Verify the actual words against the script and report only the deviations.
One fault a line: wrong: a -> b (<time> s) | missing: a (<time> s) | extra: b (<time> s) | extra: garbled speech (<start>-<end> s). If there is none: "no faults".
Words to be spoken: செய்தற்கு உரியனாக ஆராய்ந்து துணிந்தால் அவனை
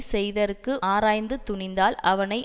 missing: உரியனாக (0.7 s)